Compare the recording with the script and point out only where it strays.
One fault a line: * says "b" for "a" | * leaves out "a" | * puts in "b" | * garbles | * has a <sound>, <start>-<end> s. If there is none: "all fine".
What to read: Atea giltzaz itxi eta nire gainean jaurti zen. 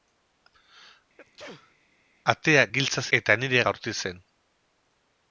* has a sneeze, 1.2-1.8 s
* leaves out "itxi"
* leaves out "gainean"